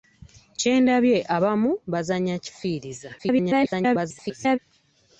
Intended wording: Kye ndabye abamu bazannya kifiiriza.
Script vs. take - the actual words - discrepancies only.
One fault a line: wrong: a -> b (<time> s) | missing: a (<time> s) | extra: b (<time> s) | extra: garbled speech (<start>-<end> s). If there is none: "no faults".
extra: garbled speech (3.2-4.6 s)